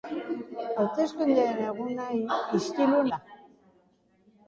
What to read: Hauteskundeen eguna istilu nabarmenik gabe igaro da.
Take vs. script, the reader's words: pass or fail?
fail